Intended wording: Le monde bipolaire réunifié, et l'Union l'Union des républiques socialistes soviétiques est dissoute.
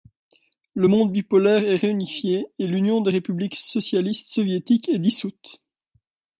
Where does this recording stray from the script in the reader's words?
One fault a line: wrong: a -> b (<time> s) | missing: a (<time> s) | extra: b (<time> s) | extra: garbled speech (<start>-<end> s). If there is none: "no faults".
extra: est (1.6 s)
missing: l'Union (3.0 s)